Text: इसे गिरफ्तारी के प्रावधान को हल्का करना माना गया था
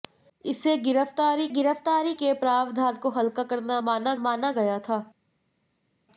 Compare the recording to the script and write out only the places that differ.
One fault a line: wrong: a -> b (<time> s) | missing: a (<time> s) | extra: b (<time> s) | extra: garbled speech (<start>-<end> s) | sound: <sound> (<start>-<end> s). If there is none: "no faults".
extra: गिरफ्तारी (1.5 s)
extra: माना (4.2 s)